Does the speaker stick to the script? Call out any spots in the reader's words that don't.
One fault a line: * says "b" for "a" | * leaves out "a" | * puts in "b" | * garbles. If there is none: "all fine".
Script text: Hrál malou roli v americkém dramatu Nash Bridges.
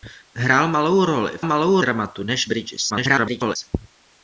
* says "malou" for "americkém"
* garbles